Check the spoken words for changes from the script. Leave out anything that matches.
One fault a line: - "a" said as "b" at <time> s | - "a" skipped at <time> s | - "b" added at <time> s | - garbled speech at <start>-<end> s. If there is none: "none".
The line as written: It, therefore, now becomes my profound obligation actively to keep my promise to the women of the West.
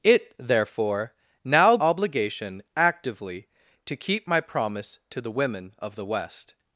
- "becomes my profound" skipped at 1.8 s